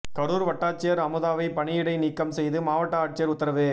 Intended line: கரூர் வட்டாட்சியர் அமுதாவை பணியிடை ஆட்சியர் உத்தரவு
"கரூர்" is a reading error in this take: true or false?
false